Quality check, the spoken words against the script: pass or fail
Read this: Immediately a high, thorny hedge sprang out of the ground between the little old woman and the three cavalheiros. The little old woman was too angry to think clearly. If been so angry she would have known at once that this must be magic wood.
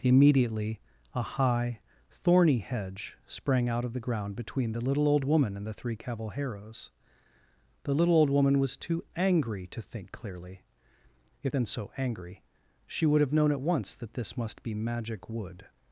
pass